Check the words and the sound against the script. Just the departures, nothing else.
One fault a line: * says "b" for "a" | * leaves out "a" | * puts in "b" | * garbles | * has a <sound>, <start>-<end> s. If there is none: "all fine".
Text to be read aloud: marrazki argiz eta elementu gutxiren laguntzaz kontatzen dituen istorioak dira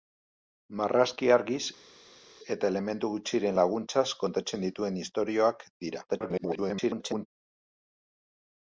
* garbles